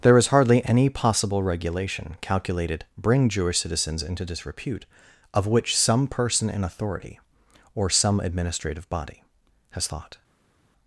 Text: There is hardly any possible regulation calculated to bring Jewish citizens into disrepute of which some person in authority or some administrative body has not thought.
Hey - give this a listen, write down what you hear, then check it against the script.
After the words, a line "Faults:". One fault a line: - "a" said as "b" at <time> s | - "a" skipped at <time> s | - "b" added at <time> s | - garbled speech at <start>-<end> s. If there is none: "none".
There is hardly any possible regulation calculated bring Jewish citizens into disrepute of which some person in authority or some administrative body has thought.
Faults:
- "to" skipped at 2.9 s
- "not" skipped at 9.9 s